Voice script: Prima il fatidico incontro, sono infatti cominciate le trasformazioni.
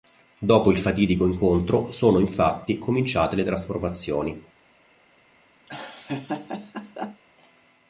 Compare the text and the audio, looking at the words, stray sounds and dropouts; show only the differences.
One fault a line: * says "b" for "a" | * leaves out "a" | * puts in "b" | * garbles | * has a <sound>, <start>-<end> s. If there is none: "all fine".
* says "Dopo" for "Prima"
* has a laugh, 5.7-7.2 s